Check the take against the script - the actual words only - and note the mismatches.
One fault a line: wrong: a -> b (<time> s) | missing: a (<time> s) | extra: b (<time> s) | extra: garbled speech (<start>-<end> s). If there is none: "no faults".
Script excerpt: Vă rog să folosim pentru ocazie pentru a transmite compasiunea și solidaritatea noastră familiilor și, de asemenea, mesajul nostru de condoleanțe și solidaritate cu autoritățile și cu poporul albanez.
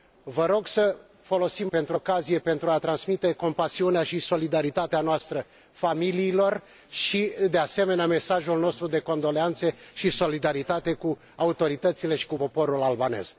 no faults